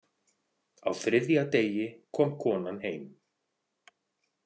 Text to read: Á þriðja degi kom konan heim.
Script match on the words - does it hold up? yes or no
yes